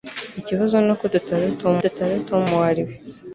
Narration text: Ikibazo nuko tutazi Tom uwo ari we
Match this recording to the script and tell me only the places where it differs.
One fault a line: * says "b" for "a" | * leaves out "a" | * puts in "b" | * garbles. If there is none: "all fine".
* puts in "tutazi Tom"